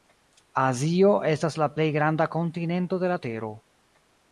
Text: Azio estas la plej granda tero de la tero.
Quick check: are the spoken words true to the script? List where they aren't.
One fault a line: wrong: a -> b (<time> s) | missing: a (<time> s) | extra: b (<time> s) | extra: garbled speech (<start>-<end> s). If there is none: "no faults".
wrong: tero -> kontinento (2.4 s)